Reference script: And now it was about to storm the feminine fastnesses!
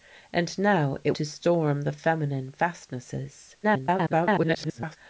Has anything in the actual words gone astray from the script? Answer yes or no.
yes